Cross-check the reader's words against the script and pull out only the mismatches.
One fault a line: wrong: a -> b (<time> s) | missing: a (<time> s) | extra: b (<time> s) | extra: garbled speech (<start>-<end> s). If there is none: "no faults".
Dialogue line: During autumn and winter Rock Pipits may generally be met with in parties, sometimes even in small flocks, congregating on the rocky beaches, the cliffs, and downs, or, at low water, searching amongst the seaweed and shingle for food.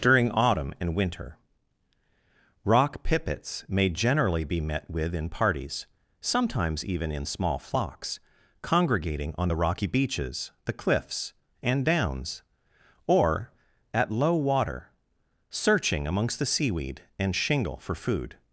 no faults